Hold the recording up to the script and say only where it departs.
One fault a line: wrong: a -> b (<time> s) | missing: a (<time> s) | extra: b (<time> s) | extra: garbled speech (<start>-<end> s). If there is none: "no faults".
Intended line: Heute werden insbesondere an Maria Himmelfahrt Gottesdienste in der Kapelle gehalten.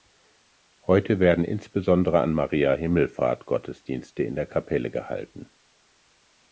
no faults